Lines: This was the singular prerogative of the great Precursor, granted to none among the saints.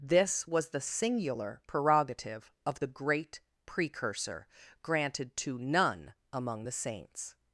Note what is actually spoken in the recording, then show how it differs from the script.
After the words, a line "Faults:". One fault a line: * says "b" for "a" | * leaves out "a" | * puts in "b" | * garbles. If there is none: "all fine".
This was the singular prerogative of the great Precursor, granted to none among the saints.
Faults:
all fine